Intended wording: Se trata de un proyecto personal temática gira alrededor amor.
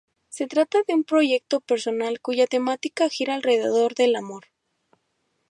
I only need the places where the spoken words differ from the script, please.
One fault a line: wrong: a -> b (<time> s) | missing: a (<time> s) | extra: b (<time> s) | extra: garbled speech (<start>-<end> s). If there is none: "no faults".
extra: cuya (2.2 s)
extra: del (3.9 s)